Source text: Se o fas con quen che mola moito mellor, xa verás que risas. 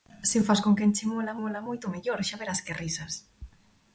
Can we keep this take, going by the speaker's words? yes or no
no